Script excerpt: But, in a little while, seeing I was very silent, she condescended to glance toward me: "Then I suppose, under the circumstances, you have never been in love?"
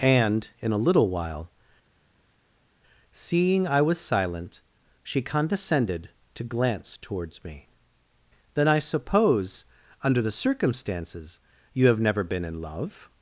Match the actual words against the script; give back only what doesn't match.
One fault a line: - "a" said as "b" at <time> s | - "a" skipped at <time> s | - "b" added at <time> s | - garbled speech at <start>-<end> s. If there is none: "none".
- "But" said as "And" at 0.0 s
- "very" skipped at 4.0 s
- "toward" said as "towards" at 7.0 s